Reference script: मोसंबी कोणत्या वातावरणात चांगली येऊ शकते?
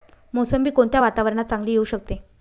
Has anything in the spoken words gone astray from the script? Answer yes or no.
no